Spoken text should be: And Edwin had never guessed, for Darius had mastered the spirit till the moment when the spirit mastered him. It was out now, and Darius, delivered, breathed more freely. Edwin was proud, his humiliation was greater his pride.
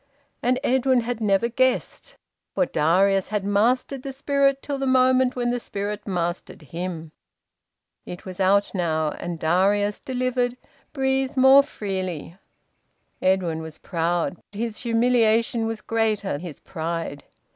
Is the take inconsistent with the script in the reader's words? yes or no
no